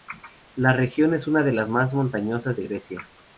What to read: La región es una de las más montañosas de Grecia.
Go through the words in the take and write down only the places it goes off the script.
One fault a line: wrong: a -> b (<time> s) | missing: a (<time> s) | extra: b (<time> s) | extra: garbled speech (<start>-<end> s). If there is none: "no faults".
no faults